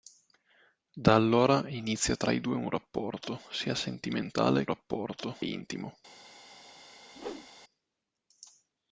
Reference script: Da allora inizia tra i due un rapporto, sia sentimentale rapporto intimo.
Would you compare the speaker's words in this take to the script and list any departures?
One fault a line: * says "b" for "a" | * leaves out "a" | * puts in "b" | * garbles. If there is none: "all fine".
all fine